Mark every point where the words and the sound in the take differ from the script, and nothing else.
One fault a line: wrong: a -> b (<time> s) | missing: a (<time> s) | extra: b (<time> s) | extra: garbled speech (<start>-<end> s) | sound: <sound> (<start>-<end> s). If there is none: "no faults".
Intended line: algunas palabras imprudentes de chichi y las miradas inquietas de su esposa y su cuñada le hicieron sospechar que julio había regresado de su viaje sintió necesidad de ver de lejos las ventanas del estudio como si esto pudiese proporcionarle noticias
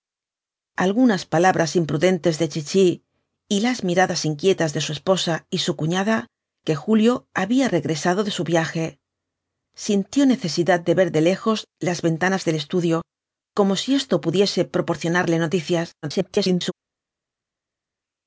missing: le hicieron sospechar (6.3 s)
extra: garbled speech (16.0-16.7 s)